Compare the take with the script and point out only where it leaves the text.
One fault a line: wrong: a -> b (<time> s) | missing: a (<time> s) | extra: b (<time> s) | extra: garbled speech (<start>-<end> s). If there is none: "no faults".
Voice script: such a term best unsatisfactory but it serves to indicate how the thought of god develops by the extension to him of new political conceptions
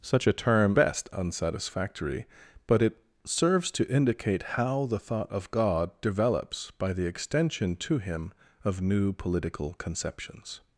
no faults